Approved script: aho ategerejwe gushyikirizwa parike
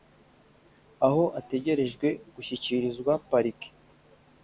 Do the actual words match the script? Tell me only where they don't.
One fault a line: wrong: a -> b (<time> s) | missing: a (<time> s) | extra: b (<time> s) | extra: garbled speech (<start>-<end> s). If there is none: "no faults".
no faults